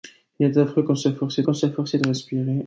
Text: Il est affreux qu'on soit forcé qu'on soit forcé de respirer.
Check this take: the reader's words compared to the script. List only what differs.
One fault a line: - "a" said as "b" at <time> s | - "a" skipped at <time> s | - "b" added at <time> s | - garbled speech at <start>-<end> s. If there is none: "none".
none